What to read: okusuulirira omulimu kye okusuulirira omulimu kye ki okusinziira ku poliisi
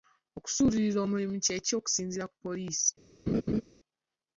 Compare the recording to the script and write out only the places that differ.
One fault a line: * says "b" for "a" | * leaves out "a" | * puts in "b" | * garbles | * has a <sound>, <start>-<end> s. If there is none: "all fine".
* leaves out "okusuulirira omulimu kye"
* has a laugh, 3.3-3.6 s